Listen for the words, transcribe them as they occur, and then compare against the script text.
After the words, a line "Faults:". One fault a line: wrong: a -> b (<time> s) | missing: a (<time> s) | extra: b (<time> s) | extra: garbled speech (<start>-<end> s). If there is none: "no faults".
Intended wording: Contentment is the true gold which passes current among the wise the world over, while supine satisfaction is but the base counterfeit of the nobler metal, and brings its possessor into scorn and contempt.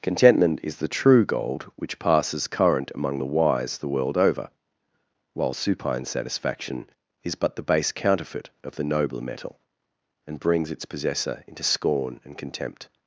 Contentment is the true gold which passes current among the wise the world over, while supine satisfaction is but the base counterfeit of the nobler metal, and brings its possessor into scorn and contempt.
Faults:
no faults